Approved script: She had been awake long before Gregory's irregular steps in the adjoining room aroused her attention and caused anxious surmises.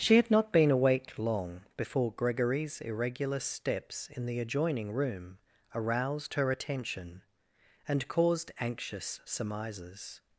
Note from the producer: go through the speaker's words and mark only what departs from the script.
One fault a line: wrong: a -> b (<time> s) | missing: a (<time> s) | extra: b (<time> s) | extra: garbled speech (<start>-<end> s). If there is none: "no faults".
extra: not (0.3 s)